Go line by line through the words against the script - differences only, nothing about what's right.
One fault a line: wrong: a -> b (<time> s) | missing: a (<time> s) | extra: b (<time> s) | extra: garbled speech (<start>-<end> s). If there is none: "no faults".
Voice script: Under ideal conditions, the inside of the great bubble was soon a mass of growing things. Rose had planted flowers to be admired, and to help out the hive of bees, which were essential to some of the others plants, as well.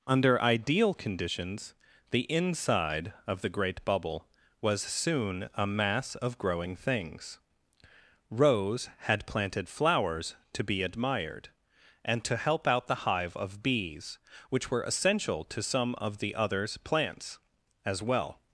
no faults